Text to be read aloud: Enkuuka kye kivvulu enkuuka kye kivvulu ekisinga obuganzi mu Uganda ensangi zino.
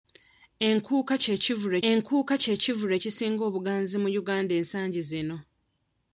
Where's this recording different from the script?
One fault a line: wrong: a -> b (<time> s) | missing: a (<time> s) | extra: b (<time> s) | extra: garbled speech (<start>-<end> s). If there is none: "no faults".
no faults